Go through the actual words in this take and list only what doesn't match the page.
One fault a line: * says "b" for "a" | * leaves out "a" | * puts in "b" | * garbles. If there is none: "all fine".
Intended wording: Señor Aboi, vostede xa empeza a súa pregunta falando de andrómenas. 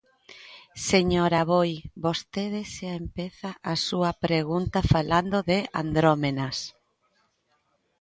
all fine